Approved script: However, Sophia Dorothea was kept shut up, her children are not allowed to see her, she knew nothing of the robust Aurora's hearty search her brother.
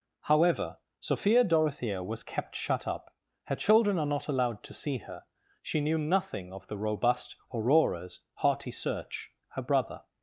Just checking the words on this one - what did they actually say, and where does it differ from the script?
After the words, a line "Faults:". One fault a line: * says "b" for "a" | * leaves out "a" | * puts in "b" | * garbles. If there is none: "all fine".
However, Sophia Dorothea was kept shut up, her children are not allowed to see her, she knew nothing of the robust Aurora's hearty search her brother.
Faults:
all fine